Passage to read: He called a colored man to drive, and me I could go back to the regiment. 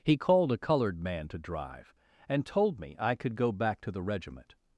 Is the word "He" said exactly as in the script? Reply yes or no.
yes